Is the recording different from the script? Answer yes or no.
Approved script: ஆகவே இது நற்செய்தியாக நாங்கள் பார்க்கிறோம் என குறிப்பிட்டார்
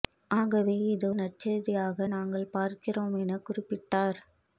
no